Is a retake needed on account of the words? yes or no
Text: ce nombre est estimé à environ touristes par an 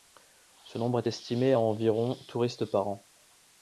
no